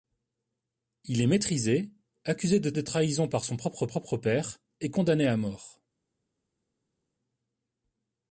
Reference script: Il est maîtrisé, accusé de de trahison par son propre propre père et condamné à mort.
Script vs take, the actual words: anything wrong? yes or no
no